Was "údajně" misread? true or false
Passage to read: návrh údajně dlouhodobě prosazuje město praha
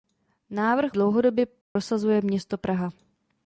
true